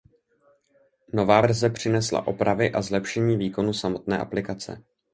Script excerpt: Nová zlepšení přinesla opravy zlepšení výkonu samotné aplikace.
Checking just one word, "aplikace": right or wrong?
right